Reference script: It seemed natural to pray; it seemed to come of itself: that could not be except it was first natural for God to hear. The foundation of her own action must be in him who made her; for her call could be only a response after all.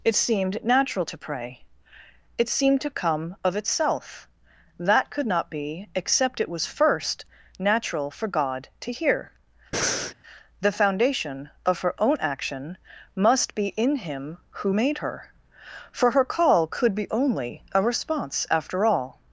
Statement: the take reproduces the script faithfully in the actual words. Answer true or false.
true